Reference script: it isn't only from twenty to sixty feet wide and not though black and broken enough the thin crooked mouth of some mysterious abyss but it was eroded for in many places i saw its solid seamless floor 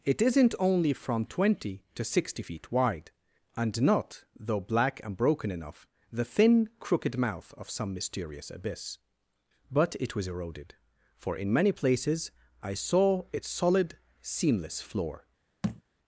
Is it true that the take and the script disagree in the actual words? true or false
false